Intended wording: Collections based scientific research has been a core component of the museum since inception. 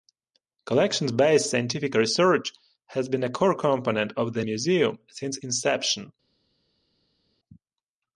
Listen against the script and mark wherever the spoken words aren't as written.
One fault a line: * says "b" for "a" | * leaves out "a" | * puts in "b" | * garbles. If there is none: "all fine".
all fine